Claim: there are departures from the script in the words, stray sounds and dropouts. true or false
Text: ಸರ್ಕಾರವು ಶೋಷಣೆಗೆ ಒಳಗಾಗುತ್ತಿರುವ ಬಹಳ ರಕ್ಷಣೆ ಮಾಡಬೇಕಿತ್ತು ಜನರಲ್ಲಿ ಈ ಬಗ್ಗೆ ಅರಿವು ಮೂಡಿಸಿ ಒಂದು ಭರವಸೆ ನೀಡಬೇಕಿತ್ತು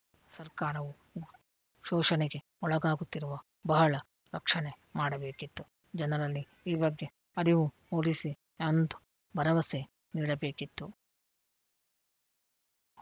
false